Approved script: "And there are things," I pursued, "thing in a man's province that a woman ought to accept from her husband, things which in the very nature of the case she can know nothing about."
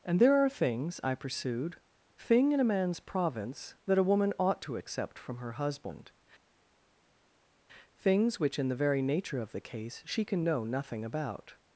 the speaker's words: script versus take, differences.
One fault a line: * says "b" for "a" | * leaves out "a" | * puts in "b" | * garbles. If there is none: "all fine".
all fine